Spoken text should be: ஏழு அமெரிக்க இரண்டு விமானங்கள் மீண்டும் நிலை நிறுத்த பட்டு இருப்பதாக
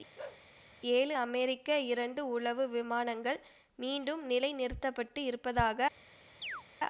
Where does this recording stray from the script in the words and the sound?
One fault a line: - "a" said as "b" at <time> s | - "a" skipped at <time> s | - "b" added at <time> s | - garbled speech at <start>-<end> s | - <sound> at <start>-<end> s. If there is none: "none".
- bark at 0.2-0.5 s
- "உளவு" added at 2.3 s
- chirp at 6.4-6.6 s